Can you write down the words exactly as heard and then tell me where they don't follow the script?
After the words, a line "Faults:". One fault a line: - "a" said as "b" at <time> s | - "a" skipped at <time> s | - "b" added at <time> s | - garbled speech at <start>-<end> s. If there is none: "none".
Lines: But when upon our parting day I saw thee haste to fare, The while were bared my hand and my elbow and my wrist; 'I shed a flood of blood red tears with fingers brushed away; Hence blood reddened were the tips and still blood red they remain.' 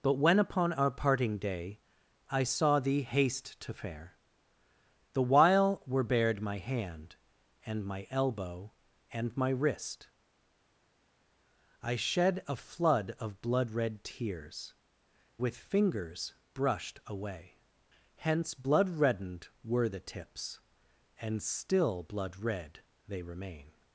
But when upon our parting day I saw thee haste to fare, The while were bared my hand and my elbow and my wrist; 'I shed a flood of blood red tears with fingers brushed away; Hence blood reddened were the tips and still blood red they remain.'
Faults:
none